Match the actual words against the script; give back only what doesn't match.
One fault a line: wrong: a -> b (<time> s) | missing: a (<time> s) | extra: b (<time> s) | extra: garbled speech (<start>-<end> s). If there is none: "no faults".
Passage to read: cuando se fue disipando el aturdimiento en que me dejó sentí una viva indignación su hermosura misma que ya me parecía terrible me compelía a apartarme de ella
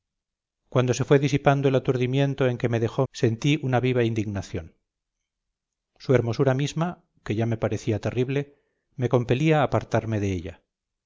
no faults